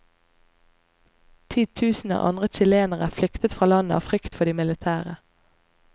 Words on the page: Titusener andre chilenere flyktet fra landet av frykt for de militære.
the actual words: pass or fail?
pass